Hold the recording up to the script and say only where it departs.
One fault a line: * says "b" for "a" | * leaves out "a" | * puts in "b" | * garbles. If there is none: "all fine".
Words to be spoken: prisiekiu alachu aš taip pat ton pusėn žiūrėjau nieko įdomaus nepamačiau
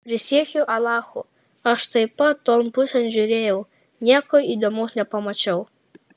all fine